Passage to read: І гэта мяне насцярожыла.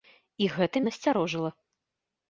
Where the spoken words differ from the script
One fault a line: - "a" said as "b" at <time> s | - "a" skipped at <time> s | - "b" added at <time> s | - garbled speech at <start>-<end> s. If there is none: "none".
- "мяне" skipped at 0.8 s